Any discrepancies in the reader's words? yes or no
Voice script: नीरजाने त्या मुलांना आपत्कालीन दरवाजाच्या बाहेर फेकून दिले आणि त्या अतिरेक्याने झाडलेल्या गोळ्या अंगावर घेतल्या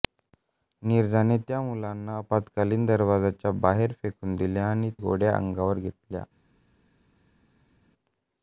yes